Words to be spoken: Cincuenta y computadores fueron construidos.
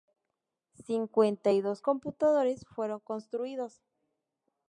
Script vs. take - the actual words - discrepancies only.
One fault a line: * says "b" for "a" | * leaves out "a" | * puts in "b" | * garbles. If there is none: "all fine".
* puts in "dos"